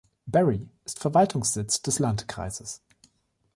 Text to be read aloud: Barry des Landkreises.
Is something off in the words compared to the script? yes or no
yes